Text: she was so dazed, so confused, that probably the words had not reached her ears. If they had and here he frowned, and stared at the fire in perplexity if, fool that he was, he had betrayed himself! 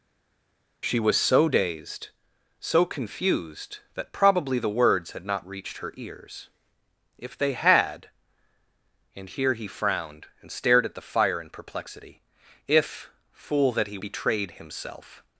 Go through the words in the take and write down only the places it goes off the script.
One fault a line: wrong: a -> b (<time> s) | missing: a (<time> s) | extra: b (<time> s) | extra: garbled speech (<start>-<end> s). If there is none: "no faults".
missing: was he had (14.0 s)